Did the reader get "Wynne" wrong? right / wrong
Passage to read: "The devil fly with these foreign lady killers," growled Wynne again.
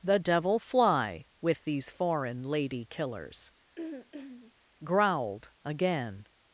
wrong